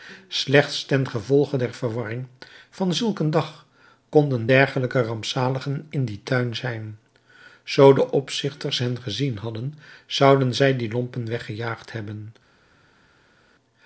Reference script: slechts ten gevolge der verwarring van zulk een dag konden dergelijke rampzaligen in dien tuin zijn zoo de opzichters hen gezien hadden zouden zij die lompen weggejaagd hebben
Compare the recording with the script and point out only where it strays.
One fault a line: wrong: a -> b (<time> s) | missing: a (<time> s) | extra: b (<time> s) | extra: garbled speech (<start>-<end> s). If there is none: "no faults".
no faults